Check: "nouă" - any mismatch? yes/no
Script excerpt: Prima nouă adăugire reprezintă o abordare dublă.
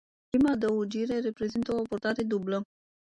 yes